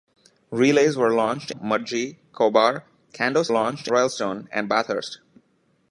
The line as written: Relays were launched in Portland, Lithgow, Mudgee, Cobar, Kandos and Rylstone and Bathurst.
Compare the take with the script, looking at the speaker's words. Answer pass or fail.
fail